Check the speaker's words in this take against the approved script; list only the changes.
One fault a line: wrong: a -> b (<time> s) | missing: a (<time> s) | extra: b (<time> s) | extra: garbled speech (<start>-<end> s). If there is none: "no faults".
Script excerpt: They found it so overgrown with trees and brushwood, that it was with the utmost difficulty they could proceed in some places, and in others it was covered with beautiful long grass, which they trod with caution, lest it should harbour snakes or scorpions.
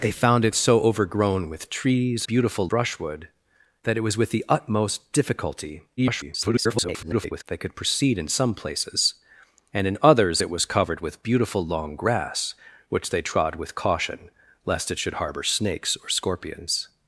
wrong: and -> beautiful (2.2 s)
extra: garbled speech (6.0-7.4 s)